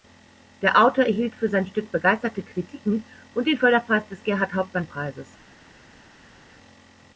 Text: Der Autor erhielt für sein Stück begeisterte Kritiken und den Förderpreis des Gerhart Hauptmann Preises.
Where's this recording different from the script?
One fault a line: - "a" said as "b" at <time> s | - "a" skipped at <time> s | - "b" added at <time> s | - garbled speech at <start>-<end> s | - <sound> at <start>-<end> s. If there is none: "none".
none